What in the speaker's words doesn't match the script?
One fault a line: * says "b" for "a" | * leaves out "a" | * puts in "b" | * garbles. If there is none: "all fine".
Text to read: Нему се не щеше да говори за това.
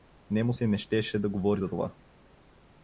all fine